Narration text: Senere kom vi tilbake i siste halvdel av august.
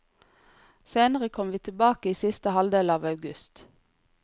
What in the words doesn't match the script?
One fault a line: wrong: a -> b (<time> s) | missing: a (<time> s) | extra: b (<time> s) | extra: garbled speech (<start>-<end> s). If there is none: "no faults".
no faults